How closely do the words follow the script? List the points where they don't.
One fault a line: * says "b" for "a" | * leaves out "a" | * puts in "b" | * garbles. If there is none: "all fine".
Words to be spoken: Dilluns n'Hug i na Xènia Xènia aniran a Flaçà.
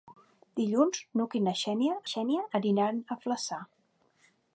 all fine